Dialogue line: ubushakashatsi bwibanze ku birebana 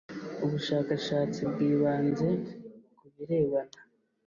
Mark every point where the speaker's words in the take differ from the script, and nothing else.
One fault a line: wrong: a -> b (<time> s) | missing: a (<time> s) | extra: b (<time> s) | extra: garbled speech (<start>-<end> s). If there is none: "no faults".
no faults